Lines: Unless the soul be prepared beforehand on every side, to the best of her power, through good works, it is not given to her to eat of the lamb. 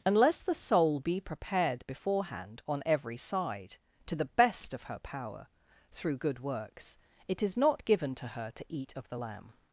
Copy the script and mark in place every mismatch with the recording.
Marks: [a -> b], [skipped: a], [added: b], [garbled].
Unless the soul be prepared beforehand on every side, to the best of her power, through good works, it is not given to her to eat of the lamb.